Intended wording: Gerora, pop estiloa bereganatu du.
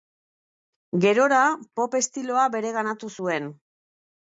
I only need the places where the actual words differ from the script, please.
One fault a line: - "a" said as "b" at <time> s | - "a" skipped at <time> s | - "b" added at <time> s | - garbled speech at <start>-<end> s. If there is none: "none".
- "du" said as "zuen" at 3.2 s